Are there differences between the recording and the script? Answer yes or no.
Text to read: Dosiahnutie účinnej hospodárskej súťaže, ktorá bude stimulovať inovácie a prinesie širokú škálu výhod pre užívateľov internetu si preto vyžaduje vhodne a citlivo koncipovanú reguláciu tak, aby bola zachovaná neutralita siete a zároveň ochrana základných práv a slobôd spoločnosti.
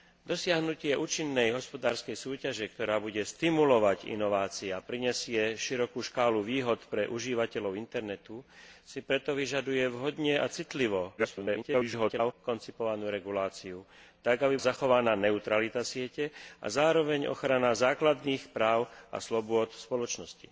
yes